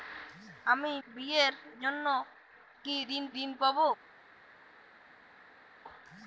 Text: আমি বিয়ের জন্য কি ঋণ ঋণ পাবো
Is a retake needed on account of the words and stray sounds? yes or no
no